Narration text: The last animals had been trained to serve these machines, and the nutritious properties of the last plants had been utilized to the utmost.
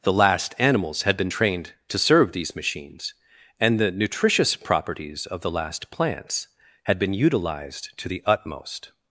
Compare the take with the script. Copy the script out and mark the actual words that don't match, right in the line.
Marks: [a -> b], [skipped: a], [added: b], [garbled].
The last animals had been trained to serve these machines, and the nutritious properties of the last plants had been utilized to the utmost.